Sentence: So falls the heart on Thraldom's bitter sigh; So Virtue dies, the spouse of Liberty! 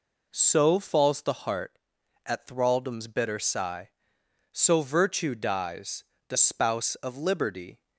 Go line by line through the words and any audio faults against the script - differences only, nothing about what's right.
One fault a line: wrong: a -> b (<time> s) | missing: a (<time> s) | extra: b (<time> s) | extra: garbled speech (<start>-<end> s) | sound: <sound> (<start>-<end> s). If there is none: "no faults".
wrong: on -> at (2.3 s)